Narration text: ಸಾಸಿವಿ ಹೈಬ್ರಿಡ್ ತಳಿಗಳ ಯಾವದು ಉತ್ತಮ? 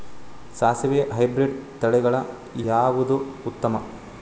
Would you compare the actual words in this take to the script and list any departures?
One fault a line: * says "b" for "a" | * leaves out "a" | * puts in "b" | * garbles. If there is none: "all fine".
all fine